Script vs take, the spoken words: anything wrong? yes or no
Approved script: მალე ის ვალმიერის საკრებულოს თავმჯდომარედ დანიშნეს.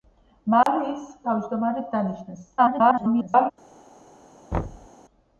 yes